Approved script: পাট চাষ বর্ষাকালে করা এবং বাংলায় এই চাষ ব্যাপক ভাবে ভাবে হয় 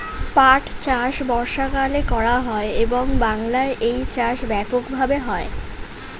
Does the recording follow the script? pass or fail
fail